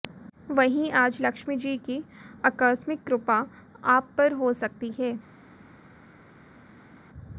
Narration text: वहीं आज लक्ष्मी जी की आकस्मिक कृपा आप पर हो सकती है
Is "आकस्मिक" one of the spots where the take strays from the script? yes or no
no